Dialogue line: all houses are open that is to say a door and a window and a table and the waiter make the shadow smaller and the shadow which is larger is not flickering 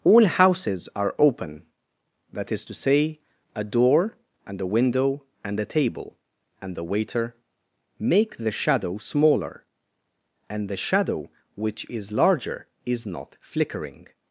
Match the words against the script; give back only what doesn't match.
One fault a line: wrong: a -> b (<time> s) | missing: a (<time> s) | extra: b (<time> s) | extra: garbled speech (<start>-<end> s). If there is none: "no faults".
no faults